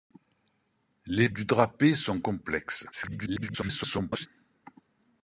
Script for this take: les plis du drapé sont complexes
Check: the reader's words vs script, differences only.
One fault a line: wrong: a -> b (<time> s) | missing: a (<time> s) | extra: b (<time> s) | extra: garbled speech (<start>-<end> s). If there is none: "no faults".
missing: plis (1.3 s)
extra: garbled speech (2.9-4.3 s)